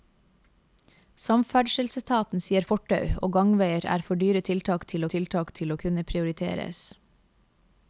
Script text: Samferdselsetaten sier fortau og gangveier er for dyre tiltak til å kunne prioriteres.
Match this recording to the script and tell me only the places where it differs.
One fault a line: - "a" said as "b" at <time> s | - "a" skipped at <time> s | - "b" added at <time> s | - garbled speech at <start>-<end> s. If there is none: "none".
- "tiltak til" added at 5.2 s